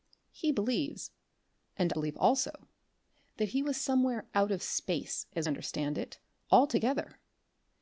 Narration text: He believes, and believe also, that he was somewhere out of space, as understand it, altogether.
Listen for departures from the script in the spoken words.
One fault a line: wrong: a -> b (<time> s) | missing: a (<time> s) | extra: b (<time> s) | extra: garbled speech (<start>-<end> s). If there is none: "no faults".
no faults